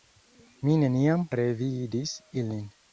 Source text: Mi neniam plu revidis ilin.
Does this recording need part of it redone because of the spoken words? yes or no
yes